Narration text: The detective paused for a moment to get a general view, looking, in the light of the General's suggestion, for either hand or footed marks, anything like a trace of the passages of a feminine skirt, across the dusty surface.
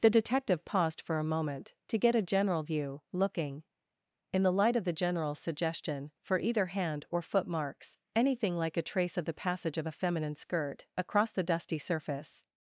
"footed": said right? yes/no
no